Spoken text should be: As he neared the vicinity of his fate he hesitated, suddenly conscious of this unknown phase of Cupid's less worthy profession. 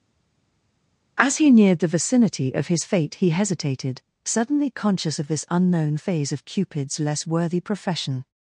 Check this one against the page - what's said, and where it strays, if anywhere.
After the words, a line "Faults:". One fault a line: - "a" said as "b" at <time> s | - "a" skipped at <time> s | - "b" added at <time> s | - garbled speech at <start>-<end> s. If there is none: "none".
As he neared the vicinity of his fate he hesitated, suddenly conscious of this unknown phase of Cupid's less worthy profession.
Faults:
none